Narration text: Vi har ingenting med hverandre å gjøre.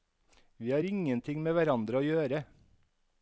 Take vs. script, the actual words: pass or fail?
pass